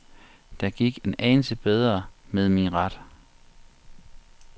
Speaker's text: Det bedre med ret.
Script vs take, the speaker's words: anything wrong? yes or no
yes